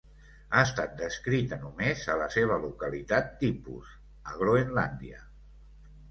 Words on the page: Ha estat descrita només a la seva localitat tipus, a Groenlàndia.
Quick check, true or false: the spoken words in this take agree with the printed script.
true